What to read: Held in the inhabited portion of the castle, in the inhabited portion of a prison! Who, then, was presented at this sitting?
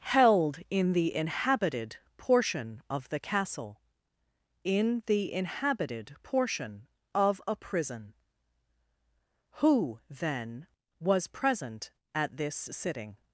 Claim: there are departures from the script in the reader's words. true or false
true